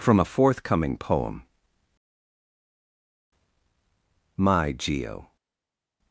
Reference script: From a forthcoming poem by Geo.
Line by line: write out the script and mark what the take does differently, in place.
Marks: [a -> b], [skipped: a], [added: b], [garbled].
From a forthcoming poem [by -> my] Geo.